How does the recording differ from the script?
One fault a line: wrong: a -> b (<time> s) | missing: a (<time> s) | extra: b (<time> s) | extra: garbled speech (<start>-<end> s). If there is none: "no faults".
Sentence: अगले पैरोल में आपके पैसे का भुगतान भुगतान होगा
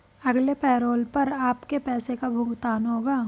wrong: में -> पर (1.1 s)
missing: भुगतान (2.9 s)